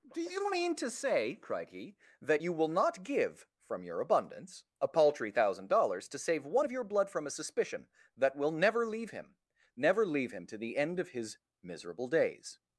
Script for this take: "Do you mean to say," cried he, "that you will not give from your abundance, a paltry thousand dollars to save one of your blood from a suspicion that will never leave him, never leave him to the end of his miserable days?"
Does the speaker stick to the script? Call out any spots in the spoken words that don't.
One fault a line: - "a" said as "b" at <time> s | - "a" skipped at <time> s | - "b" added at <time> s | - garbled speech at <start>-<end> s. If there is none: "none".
none